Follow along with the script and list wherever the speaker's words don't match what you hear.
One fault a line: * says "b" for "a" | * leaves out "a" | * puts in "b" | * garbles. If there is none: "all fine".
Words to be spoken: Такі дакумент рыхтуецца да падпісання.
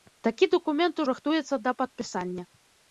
all fine